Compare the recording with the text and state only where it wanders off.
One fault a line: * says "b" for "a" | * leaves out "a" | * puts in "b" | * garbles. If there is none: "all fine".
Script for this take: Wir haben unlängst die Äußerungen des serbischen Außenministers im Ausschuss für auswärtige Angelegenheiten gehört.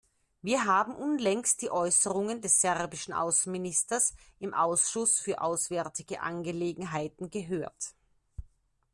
all fine